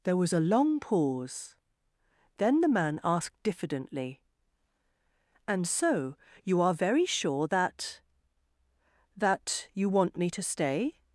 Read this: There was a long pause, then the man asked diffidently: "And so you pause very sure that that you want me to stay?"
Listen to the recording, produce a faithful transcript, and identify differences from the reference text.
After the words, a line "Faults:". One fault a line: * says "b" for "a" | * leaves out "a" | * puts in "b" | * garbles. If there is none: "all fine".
There was a long pause, then the man asked diffidently: "And so you are very sure that that you want me to stay?"
Faults:
* says "are" for "pause"